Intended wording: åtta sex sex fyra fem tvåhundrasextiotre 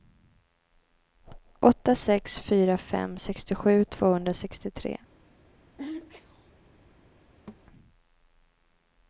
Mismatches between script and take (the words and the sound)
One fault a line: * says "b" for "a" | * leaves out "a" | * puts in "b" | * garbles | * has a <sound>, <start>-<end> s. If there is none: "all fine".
* leaves out "sex"
* puts in "sextiosju"
* has a sneeze, 5.8-6.5 s
* has a thud, 7.5-7.7 s